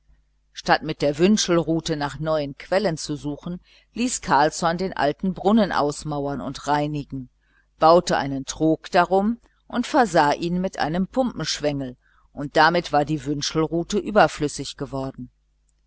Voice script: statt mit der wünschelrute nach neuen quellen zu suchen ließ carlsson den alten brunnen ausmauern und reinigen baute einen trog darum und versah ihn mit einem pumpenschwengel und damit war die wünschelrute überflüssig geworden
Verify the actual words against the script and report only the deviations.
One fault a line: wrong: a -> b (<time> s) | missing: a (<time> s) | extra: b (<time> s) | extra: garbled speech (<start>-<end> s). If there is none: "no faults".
no faults